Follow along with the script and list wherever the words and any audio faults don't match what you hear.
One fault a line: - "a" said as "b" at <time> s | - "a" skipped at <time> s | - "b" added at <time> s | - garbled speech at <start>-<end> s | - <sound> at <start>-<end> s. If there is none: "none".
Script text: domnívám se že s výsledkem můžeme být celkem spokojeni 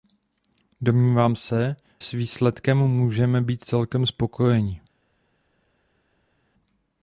- "že" skipped at 1.8 s